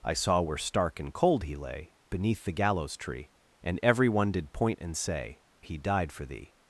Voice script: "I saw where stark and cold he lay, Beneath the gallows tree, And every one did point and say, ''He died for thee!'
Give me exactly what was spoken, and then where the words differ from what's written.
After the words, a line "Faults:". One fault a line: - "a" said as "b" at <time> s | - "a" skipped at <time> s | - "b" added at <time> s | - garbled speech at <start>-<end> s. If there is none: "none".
"I saw where stark and cold he lay, Beneath the gallows tree, And every one did point and say, ''He died for thee!'
Faults:
none